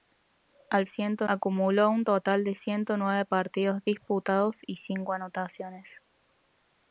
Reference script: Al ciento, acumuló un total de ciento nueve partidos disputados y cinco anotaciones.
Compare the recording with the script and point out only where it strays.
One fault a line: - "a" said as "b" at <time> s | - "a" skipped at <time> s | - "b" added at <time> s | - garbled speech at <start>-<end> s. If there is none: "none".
none